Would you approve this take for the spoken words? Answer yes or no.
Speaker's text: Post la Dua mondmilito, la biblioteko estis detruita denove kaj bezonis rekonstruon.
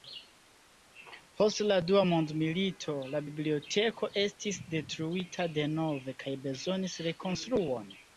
yes